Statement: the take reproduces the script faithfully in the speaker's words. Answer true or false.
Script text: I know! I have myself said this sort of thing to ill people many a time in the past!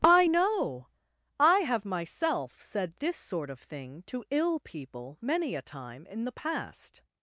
true